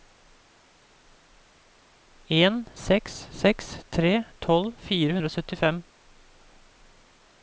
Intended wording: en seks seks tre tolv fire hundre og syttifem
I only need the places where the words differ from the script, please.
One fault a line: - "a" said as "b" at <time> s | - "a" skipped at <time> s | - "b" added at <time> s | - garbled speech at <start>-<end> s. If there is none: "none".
none